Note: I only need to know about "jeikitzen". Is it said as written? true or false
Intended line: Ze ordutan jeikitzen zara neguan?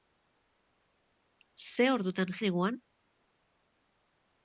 false